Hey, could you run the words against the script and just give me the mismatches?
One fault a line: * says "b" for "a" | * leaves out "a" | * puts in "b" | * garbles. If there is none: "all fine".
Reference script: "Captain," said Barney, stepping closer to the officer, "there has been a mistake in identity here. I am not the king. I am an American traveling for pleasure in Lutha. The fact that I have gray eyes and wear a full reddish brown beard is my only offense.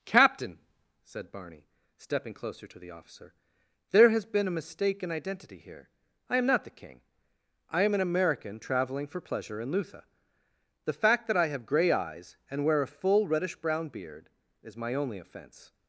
all fine